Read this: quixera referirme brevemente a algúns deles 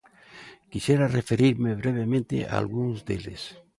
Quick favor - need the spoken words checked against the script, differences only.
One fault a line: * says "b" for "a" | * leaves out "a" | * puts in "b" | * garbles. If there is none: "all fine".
all fine